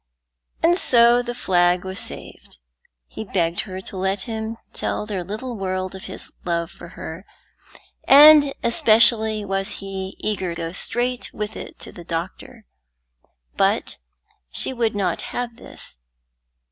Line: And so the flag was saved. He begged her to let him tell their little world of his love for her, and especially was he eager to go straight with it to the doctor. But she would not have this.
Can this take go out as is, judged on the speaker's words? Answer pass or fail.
fail